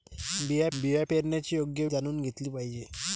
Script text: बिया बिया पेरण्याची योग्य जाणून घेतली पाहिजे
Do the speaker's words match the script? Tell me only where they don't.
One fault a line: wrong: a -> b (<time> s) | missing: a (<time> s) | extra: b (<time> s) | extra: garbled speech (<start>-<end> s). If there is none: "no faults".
no faults